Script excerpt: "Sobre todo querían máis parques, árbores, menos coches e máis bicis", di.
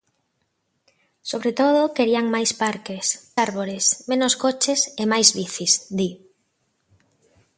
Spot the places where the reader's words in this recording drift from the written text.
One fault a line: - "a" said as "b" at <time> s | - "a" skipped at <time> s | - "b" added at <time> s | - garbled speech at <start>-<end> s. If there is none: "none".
none